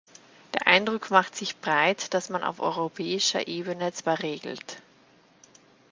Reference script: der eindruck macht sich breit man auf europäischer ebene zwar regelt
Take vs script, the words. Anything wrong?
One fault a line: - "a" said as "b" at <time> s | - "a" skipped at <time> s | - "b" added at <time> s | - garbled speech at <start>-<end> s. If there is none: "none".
- "dass" added at 2.1 s